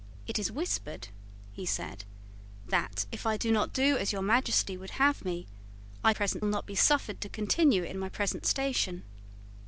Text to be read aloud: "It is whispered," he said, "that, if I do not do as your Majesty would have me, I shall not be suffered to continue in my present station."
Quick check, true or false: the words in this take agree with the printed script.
false